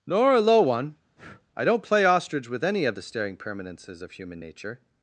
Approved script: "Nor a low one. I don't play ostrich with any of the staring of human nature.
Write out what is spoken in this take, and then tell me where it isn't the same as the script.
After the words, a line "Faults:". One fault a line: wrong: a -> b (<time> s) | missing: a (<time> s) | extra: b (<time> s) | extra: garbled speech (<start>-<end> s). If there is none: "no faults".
"Nor a low one. I don't play ostrich with any of the staring permanences of human nature.
Faults:
extra: permanences (3.4 s)